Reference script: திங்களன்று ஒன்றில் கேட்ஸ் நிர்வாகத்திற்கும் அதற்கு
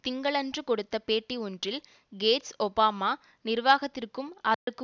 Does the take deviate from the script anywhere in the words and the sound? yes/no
yes